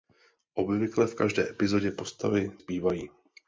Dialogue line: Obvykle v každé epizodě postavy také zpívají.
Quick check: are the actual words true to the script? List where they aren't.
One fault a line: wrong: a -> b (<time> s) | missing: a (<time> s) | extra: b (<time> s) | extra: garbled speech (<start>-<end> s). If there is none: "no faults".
missing: také (2.5 s)